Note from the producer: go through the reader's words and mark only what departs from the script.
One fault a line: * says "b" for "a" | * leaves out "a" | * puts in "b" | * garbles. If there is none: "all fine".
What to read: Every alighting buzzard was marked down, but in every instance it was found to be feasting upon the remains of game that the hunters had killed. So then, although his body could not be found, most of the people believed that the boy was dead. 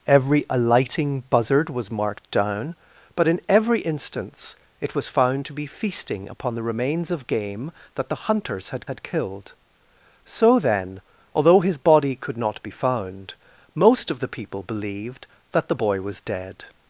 * puts in "had"